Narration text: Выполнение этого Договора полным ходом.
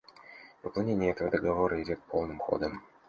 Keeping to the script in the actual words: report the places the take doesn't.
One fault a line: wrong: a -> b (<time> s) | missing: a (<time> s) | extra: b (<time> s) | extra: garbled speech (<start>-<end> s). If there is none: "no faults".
extra: идет (1.8 s)